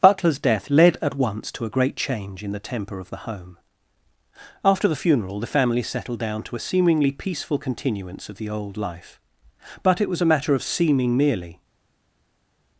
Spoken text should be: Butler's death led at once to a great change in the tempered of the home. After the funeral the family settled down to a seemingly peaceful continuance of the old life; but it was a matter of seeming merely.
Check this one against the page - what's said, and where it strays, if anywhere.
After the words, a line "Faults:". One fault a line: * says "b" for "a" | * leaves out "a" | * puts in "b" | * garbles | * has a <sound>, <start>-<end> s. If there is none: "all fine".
Butler's death led at once to a great change in the temper of the home. After the funeral the family settled down to a seemingly peaceful continuance of the old life; but it was a matter of seeming merely.
Faults:
* says "temper" for "tempered"